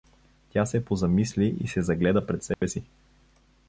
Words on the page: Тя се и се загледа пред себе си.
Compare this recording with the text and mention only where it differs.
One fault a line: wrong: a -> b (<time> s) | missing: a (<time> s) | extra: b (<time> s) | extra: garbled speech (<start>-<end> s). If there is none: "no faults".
extra: позамисли (0.8 s)